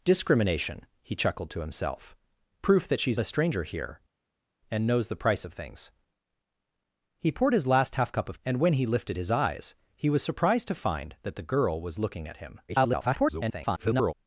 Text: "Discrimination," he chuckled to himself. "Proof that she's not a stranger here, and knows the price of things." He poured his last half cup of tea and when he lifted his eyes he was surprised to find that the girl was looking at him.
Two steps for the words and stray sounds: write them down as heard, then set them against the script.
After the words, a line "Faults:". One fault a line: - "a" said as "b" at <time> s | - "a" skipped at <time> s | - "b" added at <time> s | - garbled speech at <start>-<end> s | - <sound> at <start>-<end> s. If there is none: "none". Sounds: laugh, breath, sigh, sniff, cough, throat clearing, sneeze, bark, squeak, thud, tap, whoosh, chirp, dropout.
"Discrimination," he chuckled to himself. "Proof that she's a stranger here, and knows the price of things." He poured his last half cup of and when he lifted his eyes he was surprised to find that the girl was looking at him. [garbled]
Faults:
- "not" skipped at 3.2 s
- "tea" skipped at 8.4 s
- garbled speech at 12.7-14.1 s